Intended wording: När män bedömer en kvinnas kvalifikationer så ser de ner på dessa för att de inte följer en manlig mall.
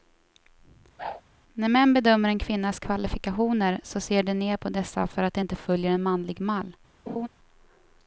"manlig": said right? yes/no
yes